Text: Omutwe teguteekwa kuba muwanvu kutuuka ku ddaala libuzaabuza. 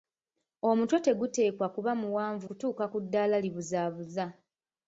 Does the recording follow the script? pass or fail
pass